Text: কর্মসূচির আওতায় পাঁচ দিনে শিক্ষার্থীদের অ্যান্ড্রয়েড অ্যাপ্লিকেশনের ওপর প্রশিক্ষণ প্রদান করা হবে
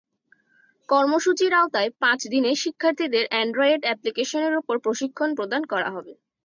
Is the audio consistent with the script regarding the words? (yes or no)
yes